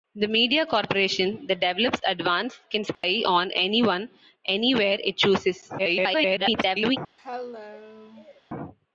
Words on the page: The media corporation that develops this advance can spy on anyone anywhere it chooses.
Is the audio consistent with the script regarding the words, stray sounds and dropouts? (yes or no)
no